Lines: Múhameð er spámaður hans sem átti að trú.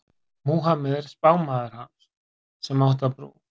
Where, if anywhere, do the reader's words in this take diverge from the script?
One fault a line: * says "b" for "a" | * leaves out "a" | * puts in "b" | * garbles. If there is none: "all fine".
all fine